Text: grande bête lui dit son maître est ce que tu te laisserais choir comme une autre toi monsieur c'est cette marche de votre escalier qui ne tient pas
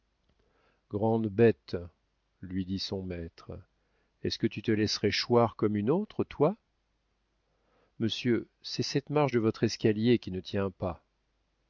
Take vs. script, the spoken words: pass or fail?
pass